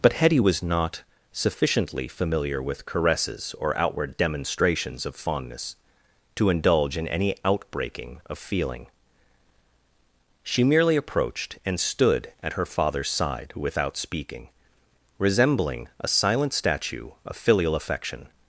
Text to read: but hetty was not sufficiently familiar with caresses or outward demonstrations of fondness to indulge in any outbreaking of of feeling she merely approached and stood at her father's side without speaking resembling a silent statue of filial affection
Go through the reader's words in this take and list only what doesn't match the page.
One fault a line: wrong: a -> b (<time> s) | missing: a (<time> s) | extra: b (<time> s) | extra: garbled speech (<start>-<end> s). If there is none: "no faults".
missing: of (8.4 s)